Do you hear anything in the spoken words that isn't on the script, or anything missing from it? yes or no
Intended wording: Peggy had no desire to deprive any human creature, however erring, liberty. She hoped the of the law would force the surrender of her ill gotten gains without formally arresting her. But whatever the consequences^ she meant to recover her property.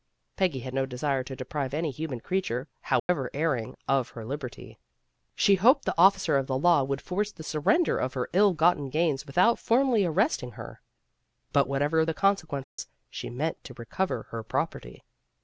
yes